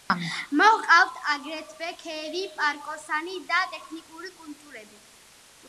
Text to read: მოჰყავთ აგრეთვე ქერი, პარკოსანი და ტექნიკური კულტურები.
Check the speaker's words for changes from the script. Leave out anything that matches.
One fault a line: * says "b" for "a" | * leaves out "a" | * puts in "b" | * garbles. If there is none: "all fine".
all fine